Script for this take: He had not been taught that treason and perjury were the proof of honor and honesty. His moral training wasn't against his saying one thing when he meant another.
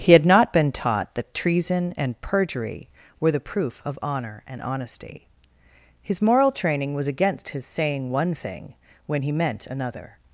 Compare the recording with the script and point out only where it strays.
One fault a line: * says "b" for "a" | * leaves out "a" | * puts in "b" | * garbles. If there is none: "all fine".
* says "was" for "wasn't"